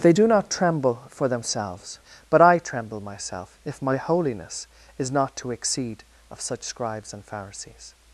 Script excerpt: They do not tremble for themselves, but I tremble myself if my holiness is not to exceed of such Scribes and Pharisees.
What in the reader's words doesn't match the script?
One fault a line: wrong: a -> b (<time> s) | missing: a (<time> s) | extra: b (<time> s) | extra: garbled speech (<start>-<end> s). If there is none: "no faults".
no faults